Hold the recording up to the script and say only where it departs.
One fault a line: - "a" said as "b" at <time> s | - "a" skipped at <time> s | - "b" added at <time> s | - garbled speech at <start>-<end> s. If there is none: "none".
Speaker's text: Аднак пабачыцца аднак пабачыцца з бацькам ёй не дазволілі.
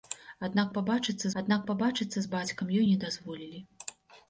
none